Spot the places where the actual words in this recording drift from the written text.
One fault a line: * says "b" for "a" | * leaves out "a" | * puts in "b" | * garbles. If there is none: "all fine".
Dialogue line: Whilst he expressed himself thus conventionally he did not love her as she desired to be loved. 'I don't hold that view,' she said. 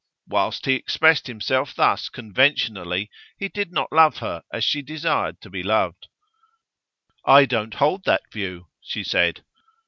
all fine